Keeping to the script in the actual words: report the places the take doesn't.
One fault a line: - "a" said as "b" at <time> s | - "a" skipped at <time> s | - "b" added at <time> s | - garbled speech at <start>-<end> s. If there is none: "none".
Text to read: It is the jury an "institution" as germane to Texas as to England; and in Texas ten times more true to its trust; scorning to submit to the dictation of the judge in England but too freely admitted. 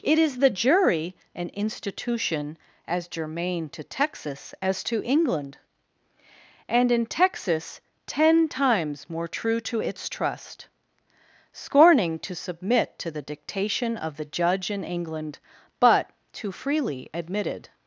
none